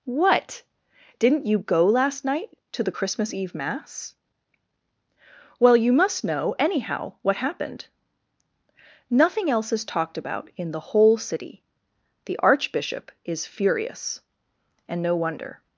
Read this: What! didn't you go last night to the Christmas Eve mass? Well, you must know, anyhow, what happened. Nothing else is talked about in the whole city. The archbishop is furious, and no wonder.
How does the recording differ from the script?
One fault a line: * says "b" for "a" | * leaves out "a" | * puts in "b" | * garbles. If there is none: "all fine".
all fine